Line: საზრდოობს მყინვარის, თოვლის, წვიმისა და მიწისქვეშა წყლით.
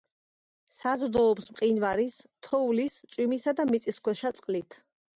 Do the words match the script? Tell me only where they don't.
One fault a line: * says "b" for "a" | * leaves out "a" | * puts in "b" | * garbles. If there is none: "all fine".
all fine